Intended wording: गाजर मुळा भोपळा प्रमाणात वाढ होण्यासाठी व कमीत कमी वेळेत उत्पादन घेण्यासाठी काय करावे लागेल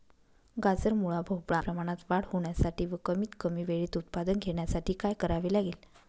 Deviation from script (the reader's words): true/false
false